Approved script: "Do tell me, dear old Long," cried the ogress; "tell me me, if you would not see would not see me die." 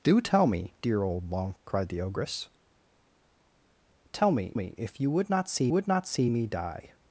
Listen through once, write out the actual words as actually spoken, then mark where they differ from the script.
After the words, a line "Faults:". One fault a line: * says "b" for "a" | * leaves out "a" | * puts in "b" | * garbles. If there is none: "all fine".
"Do tell me, dear old Long," cried the ogress; "tell me me, if you would not see would not see me die."
Faults:
all fine